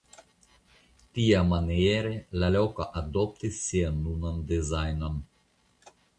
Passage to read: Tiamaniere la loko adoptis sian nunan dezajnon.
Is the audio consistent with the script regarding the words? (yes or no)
yes